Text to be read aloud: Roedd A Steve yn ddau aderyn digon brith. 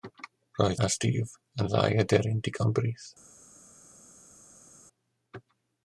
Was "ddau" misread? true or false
false